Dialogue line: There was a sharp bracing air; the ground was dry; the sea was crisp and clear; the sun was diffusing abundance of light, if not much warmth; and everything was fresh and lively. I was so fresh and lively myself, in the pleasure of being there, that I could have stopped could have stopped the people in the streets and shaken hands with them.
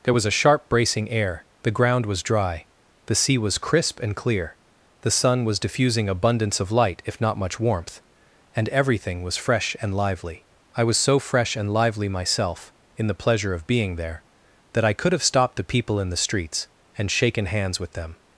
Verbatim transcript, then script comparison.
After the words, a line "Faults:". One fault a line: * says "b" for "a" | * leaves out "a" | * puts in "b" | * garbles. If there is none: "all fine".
There was a sharp bracing air; the ground was dry; the sea was crisp and clear; the sun was diffusing abundance of light, if not much warmth; and everything was fresh and lively. I was so fresh and lively myself, in the pleasure of being there, that I could have stopped the people in the streets and shaken hands with them.
Faults:
* leaves out "could have stopped"